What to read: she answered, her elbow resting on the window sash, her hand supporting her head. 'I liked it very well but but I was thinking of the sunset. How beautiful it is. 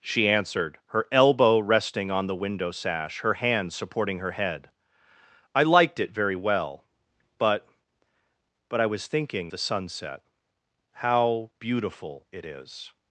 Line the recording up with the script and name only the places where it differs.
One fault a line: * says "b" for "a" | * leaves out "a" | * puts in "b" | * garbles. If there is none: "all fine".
* leaves out "of"